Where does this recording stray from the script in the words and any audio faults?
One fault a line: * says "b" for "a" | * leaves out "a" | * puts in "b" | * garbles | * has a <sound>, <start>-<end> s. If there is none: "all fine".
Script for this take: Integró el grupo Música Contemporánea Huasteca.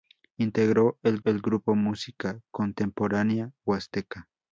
* puts in "el"